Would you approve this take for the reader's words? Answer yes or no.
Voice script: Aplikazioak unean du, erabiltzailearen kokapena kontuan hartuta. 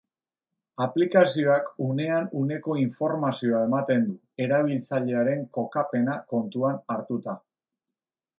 no